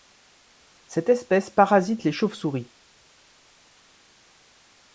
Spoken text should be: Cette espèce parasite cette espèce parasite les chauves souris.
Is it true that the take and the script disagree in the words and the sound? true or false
true